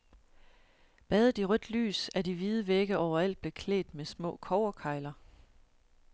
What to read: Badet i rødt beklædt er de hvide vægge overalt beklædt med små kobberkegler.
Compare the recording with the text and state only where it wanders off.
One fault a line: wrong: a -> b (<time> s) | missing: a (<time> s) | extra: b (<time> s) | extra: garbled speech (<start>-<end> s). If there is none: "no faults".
wrong: beklædt -> lys (1.7 s)